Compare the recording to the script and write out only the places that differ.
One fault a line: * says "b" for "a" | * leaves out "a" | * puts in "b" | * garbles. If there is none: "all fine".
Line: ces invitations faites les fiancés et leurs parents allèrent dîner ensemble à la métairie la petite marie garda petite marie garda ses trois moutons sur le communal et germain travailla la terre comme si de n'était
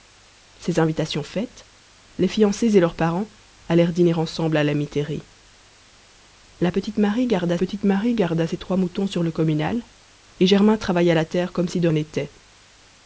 all fine